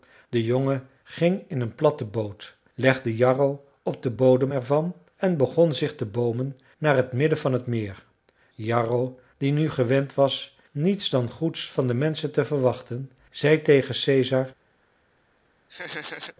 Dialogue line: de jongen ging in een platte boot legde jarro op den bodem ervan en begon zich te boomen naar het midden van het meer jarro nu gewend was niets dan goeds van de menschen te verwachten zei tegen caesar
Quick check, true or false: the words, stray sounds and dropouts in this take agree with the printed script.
false